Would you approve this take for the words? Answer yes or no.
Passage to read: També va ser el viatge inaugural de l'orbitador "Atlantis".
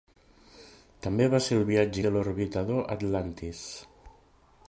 no